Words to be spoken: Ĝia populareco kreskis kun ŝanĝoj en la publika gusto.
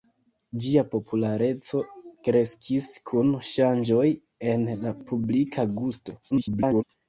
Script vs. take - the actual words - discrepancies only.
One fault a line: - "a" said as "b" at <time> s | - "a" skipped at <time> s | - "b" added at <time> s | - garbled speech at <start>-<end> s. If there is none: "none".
- garbled speech at 6.3-6.8 s